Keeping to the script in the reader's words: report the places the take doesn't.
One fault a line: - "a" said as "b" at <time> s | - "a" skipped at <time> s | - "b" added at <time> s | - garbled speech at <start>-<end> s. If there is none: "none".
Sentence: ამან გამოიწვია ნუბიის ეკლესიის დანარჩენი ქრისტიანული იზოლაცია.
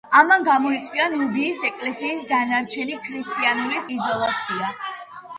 none